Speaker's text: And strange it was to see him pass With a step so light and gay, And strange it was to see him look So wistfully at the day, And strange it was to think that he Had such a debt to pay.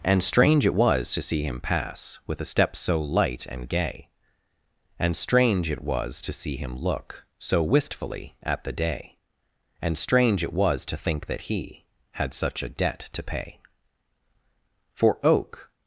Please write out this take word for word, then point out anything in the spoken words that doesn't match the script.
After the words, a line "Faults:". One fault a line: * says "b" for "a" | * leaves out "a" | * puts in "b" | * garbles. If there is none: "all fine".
And strange it was to see him pass With a step so light and gay, And strange it was to see him look So wistfully at the day, And strange it was to think that he Had such a debt to pay. For oak
Faults:
* puts in "For oak"